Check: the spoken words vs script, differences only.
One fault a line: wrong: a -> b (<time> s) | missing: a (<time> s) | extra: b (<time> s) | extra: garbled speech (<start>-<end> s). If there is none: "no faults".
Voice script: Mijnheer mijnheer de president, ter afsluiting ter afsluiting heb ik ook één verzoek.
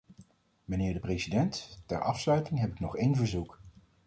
missing: mijnheer (0.9 s)
missing: ter afsluiting (2.6 s)
wrong: ook -> nog (2.8 s)